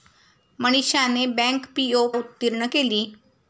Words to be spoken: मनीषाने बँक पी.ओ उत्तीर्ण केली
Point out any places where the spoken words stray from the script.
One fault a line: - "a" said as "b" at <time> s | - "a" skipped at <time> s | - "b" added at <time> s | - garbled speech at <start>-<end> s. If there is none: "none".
none